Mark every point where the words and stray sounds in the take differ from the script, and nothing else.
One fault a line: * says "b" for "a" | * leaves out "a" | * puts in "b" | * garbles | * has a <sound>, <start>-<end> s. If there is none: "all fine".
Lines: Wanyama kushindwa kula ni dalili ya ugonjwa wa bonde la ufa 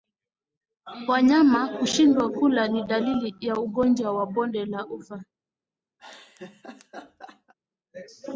* has a laugh, 6.0-7.5 s